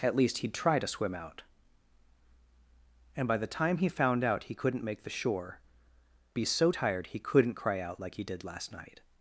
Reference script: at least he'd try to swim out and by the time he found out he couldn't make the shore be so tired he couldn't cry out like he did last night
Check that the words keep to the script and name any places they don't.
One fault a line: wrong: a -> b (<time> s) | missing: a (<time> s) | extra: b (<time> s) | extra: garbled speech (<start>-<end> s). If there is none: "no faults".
no faults